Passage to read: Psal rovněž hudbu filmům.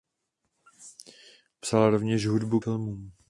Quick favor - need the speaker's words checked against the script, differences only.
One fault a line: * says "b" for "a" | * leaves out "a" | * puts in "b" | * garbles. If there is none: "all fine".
all fine